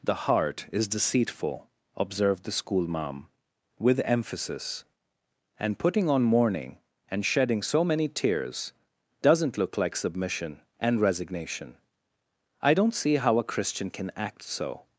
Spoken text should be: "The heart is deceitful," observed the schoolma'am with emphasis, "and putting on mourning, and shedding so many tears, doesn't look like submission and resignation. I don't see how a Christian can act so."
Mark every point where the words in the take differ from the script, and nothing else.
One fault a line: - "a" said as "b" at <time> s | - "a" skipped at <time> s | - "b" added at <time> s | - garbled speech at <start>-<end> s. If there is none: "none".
none